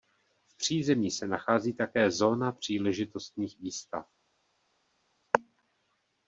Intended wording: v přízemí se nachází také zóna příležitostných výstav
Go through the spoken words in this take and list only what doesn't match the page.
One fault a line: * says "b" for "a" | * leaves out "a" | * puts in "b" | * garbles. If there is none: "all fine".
all fine